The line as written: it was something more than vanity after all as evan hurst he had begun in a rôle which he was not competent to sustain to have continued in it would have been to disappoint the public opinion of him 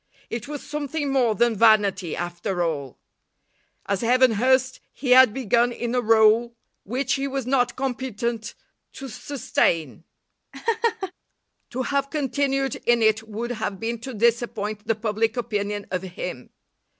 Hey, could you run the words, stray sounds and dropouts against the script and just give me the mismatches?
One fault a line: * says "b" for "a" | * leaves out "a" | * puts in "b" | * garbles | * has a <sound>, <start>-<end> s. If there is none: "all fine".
* has a laugh, 10.5-11.1 s